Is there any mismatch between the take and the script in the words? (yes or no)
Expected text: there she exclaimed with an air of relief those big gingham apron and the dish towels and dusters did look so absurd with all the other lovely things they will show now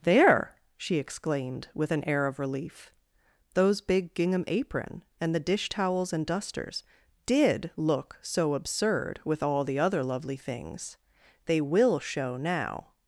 no